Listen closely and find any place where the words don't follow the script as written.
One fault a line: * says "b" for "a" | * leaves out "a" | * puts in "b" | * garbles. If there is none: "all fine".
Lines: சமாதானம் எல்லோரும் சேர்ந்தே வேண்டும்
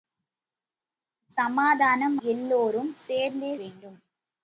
all fine